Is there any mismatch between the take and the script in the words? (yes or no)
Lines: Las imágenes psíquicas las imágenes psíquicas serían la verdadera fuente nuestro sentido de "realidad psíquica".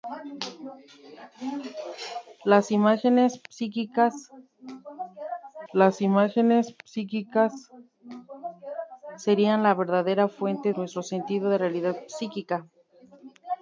no